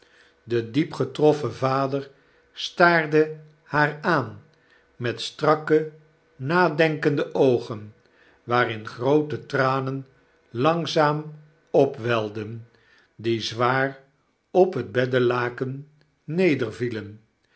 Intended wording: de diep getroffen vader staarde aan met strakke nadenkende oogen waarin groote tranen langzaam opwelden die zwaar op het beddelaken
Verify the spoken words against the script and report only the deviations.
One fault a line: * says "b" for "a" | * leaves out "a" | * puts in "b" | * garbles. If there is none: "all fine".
* puts in "haar"